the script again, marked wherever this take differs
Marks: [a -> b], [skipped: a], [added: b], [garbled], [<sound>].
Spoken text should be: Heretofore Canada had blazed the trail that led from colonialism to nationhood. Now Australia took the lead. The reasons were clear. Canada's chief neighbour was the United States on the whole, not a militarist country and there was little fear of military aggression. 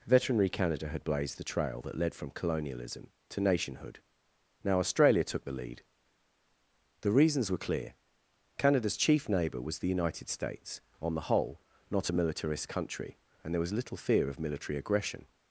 [Heretofore -> Veterinary] Canada had blazed the trail that led from colonialism to nationhood. Now Australia took the lead. The reasons were clear. Canada's chief neighbour was the United States on the whole, not a militarist country and there was little fear of military aggression.